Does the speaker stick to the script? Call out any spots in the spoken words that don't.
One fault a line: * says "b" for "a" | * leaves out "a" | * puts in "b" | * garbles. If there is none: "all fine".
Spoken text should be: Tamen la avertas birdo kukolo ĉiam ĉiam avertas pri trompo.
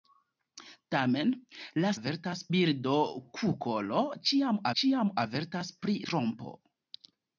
all fine